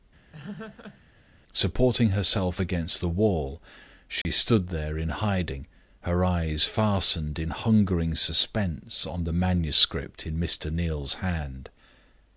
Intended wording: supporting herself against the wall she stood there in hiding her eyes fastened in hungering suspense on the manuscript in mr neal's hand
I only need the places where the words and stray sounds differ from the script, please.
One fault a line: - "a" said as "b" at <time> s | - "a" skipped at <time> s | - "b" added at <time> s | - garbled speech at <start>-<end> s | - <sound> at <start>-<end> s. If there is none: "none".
- laugh at 0.3-1.0 s
- dropout at 4.2-4.3 s